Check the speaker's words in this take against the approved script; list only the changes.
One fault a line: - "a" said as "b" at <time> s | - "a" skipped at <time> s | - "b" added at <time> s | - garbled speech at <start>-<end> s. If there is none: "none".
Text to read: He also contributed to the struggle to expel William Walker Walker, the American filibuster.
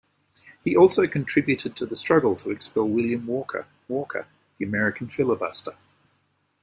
none